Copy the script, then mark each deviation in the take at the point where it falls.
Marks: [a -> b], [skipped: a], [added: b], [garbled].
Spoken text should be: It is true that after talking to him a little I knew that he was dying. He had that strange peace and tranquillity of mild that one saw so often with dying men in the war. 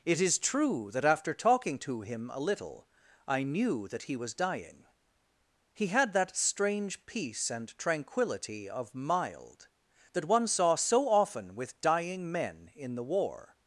It is true that after talking to him a little I knew that he was dying. He had that strange peace and tranquillity of mild that one saw so often with dying men in the war.